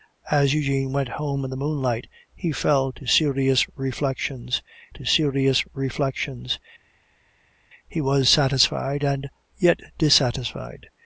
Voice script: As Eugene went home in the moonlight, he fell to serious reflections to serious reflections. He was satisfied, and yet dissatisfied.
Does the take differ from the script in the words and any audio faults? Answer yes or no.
no